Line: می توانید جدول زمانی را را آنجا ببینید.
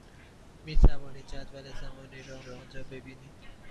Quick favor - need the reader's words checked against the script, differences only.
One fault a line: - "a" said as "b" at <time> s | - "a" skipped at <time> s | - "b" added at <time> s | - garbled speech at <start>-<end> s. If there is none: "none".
none